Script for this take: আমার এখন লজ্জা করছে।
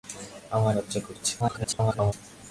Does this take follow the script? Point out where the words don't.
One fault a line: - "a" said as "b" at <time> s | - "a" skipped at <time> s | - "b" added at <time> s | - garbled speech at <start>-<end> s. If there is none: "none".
- "এখন" skipped at 0.7 s
- garbled speech at 1.4-2.1 s